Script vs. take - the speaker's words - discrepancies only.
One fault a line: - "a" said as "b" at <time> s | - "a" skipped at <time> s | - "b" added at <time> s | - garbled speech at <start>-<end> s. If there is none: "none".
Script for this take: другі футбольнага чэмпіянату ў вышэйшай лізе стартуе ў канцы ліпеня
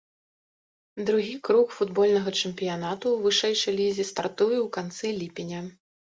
- "круг" added at 1.5 s